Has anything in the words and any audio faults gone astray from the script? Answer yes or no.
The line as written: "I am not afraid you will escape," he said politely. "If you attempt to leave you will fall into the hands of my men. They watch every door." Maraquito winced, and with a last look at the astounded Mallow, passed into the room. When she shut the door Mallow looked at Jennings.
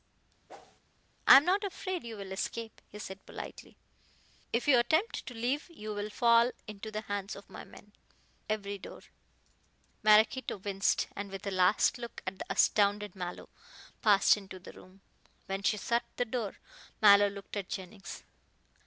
yes